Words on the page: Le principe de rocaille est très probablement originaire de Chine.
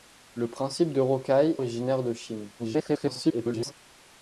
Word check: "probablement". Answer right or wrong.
wrong